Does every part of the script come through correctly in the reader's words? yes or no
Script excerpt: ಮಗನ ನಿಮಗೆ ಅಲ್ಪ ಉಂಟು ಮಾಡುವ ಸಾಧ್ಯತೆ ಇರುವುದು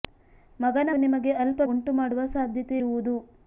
yes